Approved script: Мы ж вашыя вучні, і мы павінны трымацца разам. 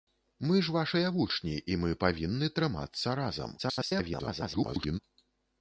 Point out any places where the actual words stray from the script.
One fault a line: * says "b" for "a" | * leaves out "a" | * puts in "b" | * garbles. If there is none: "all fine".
* garbles